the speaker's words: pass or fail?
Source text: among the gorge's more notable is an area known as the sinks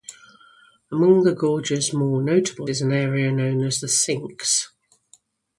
pass